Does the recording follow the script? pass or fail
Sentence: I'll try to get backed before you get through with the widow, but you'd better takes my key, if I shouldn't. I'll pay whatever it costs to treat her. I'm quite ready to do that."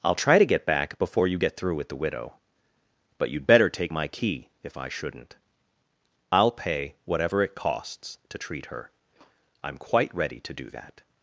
fail